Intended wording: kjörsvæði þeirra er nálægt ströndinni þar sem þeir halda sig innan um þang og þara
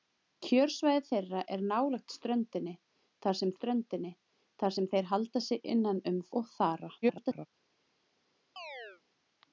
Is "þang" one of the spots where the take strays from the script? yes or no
yes